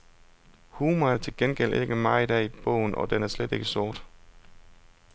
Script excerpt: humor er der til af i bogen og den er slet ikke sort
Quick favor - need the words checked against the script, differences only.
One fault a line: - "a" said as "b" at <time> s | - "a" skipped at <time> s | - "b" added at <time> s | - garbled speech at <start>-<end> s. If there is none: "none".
- "gengæld ikke meget" added at 1.4 s